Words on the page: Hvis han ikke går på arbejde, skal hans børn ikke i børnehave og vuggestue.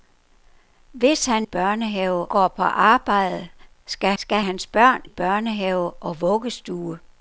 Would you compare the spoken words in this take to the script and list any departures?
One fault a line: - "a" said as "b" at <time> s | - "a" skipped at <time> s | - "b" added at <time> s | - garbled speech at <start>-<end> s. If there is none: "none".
- "ikke" said as "børnehave" at 1.4 s
- "skal" added at 4.2 s
- "ikke" skipped at 5.0 s